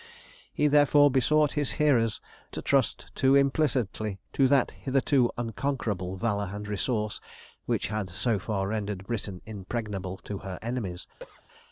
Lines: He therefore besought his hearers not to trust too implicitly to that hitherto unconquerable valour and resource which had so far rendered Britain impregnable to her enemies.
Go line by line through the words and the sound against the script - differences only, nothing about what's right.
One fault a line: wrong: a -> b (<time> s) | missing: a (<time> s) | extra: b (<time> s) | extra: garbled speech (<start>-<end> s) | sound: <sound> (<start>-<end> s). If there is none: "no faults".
missing: not (2.2 s)
sound: cough (11.2-11.4 s)